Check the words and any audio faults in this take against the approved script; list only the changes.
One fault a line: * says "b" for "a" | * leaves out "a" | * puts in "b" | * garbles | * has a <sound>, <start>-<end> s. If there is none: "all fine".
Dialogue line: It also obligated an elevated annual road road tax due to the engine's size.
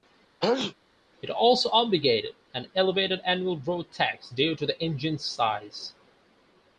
* has a sneeze, 0.4-0.7 s
* leaves out "road"